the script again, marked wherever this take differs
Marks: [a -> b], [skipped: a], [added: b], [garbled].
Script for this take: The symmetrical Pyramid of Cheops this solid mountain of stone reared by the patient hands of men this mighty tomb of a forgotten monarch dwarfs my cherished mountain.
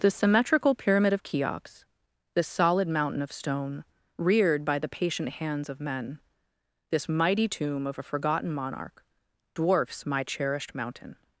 The symmetrical Pyramid of Cheops this solid mountain of stone reared by the patient hands of men this mighty tomb of a forgotten monarch dwarfs my cherished mountain.